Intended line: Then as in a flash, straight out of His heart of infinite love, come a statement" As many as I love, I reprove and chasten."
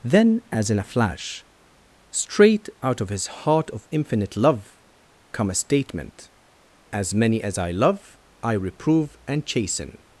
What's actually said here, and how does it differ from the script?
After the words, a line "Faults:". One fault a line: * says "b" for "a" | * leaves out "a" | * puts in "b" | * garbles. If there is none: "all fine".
Then as in a flash, straight out of His heart of infinite love, come a statement" As many as I love, I reprove and chasten."
Faults:
all fine